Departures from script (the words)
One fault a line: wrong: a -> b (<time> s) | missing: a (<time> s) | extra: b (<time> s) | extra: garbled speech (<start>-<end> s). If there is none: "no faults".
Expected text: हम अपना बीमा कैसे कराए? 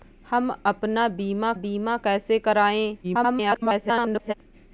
extra: बीमा (1.5 s)
extra: garbled speech (3.0-4.3 s)